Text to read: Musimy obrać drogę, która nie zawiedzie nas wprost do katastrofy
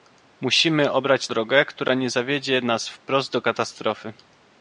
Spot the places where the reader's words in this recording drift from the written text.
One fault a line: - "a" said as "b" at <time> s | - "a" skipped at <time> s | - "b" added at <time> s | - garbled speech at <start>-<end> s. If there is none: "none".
none